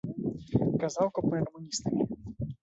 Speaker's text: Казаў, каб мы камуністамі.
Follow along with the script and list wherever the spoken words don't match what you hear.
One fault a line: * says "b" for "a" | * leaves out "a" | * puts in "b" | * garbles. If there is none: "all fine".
all fine